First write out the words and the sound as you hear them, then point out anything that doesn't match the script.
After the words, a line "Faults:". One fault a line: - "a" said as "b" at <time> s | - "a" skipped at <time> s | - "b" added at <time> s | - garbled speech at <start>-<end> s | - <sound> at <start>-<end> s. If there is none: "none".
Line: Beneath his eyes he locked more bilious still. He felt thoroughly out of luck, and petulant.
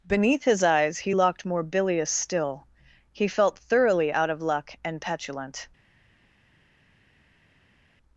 Beneath his eyes he locked more bilious still. He felt thoroughly out of luck, and petulant.
Faults:
none